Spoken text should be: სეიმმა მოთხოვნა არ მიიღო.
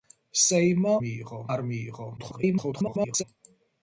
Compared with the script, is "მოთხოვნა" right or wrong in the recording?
wrong